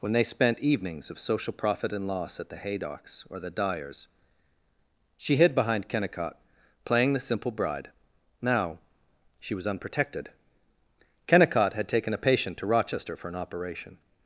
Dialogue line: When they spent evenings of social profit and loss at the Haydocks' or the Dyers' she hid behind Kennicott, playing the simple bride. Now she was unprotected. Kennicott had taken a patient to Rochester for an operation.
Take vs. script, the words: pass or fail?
pass